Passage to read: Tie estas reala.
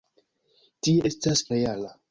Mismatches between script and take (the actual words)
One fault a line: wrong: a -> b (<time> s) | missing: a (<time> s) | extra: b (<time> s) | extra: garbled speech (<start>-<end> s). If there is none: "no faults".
no faults